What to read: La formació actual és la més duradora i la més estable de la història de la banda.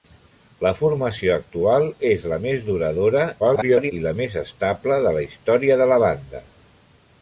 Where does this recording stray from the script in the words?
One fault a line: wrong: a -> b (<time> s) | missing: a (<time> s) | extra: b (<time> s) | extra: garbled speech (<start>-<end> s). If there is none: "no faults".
extra: garbled speech (3.4-3.9 s)